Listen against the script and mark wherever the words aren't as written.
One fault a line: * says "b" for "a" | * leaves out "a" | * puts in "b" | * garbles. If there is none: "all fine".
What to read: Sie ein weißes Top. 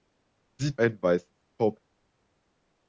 all fine